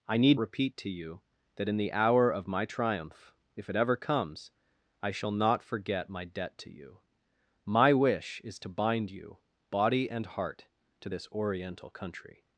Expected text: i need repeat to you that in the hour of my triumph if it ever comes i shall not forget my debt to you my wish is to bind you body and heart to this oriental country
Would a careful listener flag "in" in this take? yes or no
no